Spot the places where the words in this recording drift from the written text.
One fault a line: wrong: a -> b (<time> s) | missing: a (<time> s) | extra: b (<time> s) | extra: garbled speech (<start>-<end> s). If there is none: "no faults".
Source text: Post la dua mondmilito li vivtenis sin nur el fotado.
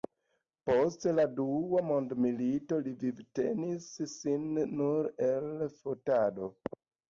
no faults